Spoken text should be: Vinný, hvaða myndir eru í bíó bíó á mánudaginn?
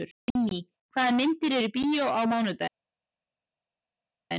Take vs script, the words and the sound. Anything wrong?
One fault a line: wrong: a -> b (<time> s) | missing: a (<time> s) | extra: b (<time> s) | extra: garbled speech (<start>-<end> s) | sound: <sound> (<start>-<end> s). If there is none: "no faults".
missing: bíó (2.1 s)